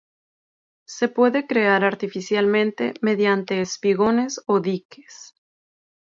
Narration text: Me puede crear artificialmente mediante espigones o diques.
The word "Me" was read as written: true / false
false